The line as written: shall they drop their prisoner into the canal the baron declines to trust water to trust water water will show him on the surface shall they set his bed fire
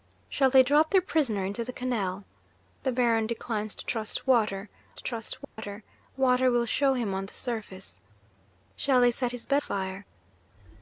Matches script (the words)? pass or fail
pass